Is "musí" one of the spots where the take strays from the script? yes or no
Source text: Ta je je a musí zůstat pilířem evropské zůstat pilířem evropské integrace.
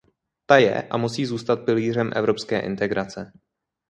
no